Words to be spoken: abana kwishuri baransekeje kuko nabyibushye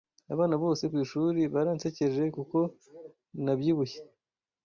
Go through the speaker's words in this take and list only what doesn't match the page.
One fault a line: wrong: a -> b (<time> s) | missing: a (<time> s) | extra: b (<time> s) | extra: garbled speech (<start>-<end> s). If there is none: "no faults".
extra: bose (0.6 s)